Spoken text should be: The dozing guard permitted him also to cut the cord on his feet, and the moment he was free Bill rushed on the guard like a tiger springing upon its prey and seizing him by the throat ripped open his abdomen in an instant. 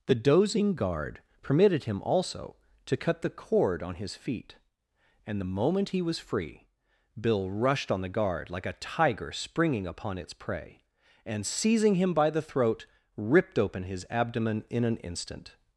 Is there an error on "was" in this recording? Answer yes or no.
no